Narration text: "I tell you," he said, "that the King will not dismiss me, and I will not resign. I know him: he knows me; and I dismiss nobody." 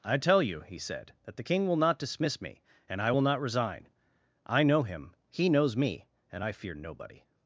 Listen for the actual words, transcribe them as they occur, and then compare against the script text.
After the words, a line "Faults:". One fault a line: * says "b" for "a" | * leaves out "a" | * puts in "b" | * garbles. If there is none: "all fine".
"I tell you," he said, "that the King will not dismiss me, and I will not resign. I know him: he knows me; and I fear nobody."
Faults:
* says "fear" for "dismiss"